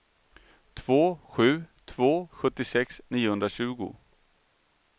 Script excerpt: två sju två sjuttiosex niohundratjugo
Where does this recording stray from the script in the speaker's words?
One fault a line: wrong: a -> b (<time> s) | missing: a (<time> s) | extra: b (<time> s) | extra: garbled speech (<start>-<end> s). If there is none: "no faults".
no faults